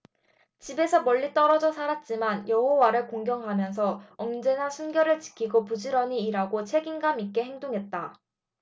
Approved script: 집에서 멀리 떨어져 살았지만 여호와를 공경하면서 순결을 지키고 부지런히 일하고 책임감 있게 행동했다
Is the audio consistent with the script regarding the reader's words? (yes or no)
no